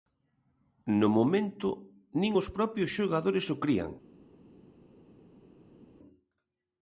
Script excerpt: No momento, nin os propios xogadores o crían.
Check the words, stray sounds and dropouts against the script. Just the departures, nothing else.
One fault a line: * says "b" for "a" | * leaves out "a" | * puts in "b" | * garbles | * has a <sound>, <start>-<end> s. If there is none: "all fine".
all fine